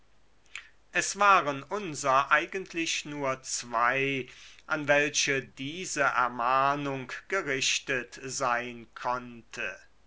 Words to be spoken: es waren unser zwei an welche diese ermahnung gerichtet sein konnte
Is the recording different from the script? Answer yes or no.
yes